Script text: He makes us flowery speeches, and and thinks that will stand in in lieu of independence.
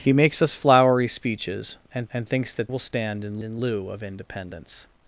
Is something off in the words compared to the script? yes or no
no